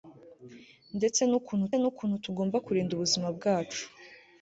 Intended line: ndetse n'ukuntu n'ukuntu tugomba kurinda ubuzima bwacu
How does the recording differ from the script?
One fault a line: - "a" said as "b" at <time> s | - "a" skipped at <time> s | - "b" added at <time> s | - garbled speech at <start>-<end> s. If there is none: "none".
none